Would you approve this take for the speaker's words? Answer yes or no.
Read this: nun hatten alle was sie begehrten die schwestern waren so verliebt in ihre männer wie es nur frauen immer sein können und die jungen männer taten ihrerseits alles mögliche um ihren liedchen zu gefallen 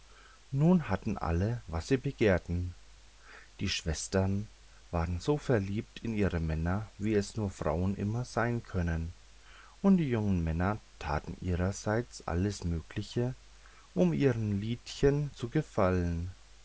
yes